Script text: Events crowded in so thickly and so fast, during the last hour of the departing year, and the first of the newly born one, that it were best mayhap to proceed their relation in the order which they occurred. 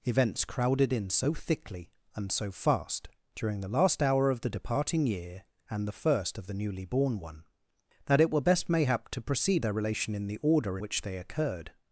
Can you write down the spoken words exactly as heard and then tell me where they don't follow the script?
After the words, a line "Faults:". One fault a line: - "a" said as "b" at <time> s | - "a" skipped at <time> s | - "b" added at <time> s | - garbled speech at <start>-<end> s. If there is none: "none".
Events crowded in so thickly and so fast, during the last hour of the departing year, and the first of the newly born one, that it were best mayhap to proceed their relation in the order which they occurred.
Faults:
none